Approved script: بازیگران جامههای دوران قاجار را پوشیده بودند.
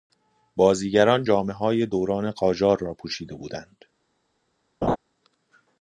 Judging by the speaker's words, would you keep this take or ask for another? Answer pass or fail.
pass